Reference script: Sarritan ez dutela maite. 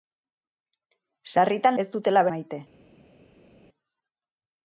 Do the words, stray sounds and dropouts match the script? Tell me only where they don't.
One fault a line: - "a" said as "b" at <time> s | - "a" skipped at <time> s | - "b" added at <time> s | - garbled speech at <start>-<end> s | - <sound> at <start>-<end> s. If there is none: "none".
none